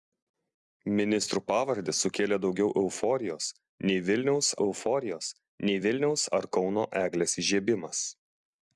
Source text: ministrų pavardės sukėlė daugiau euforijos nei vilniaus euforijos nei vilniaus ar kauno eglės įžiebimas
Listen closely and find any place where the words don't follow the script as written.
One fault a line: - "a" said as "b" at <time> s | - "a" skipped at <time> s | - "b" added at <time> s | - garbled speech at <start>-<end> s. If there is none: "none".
none